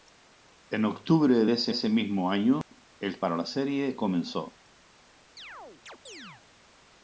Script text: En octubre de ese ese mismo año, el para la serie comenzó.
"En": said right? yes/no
yes